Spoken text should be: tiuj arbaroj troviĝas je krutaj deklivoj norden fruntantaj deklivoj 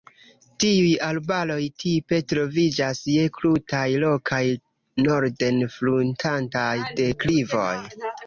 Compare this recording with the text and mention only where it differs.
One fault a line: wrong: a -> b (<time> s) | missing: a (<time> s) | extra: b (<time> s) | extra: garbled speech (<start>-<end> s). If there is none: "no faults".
extra: tipe (1.8 s)
wrong: deklivoj -> rokaj (4.0 s)